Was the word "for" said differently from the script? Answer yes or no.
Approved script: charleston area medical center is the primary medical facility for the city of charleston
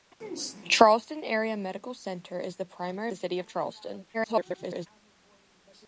yes